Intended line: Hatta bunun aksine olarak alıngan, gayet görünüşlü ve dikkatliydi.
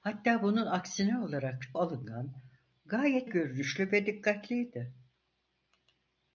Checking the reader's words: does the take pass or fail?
pass